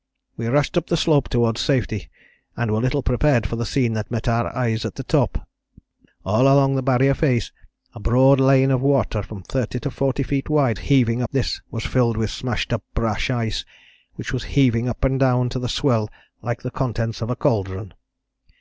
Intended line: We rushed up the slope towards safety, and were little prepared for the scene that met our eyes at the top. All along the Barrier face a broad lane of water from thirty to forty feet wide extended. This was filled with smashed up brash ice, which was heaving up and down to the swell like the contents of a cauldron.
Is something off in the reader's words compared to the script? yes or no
yes